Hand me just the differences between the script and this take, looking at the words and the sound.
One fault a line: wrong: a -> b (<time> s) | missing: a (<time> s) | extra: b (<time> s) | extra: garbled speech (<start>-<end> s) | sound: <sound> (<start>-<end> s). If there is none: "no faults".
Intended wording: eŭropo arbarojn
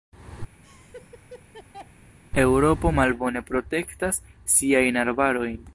sound: laugh (0.6-1.9 s)
extra: malbone protektas siajn (3.0 s)